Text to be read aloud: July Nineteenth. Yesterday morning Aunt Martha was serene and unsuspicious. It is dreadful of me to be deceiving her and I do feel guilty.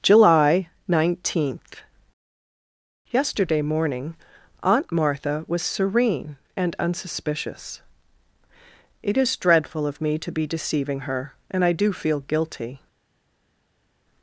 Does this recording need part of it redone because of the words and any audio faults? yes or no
no